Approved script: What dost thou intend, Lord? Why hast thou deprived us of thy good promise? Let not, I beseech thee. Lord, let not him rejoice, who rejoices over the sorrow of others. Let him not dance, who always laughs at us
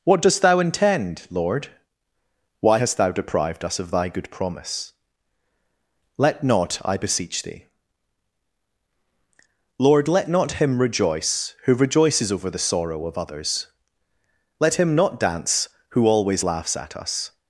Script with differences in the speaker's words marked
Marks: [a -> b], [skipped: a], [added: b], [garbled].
What dost thou intend, Lord? Why hast thou deprived us of thy good promise? Let not, I beseech thee. Lord, let not him rejoice, who rejoices over the sorrow of others. Let him not dance, who always laughs at us